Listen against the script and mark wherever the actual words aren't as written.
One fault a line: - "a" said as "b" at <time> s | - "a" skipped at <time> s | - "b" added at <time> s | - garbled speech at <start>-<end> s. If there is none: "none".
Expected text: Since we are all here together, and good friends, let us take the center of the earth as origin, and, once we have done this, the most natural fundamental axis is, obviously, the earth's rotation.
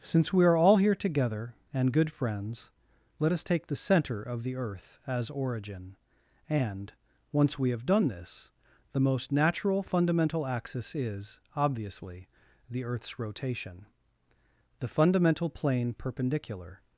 - "The fundamental plane perpendicular" added at 14.8 s